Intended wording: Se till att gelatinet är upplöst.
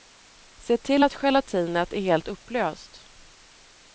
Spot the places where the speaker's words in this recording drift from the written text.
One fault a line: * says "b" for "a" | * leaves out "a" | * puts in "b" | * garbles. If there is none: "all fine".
* puts in "helt"